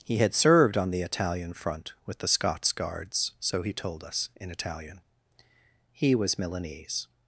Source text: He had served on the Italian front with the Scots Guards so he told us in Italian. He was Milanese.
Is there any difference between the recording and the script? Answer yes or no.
no